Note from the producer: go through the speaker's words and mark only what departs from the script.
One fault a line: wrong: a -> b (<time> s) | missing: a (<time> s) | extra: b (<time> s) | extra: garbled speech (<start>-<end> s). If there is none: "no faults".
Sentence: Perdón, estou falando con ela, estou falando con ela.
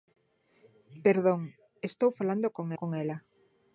missing: ela estou falando (2.7 s)